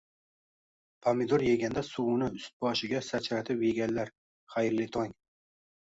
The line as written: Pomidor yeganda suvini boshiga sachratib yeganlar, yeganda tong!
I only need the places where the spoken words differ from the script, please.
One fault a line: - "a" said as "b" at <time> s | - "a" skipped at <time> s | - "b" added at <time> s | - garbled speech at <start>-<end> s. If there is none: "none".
- "ust" added at 2.4 s
- "yeganda" said as "xayrli" at 4.6 s